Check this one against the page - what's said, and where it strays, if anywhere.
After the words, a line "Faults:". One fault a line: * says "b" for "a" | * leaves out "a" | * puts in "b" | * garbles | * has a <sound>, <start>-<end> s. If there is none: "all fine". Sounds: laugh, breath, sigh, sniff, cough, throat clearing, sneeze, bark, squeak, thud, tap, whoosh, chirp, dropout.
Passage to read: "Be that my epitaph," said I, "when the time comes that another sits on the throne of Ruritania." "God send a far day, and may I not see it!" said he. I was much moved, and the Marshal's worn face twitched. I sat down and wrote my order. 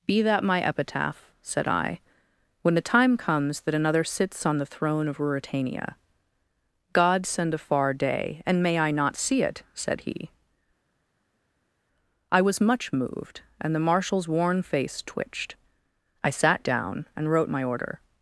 "Be that my epitaph," said I, "when the time comes that another sits on the throne of Ruritania." "God send a far day, and may I not see it!" said he. I was much moved, and the Marshal's worn face twitched. I sat down and wrote my order.
Faults:
all fine